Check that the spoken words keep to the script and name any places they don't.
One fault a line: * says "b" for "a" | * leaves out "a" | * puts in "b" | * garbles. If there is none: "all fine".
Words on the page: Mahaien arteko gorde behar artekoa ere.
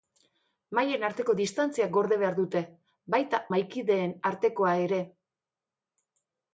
* puts in "distantzia"
* puts in "dute baita mahaikideen"